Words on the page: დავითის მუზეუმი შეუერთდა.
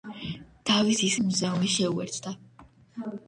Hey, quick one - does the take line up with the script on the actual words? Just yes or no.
yes